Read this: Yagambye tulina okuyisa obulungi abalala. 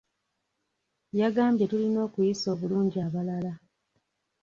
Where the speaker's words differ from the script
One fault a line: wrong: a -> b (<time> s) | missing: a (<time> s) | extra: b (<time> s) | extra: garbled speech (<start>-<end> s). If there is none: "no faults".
no faults